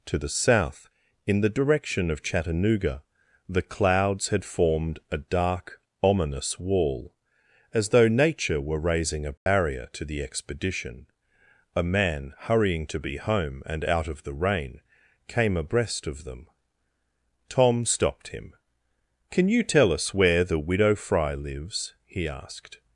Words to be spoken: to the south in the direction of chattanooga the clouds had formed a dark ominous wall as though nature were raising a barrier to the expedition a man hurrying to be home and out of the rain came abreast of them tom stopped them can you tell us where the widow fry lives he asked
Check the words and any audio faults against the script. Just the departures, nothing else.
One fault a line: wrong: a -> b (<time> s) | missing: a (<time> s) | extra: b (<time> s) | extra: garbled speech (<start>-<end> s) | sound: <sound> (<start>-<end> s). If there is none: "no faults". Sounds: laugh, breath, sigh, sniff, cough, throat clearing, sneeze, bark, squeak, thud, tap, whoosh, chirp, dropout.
sound: dropout (9.4-9.5 s)
wrong: them -> him (18.3 s)